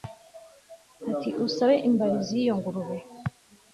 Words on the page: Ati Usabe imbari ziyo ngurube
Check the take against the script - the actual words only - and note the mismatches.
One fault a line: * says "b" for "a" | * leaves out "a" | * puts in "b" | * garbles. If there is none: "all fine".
all fine